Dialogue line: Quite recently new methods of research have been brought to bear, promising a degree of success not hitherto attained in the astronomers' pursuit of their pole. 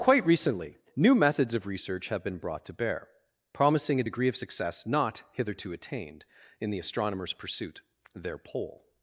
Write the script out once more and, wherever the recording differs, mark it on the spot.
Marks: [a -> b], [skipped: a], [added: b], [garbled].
Quite recently new methods of research have been brought to bear, promising a degree of success not hitherto attained in the astronomers' pursuit [skipped: of] their pole.